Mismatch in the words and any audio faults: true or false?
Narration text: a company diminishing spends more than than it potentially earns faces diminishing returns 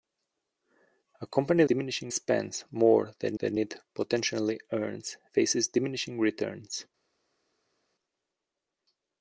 false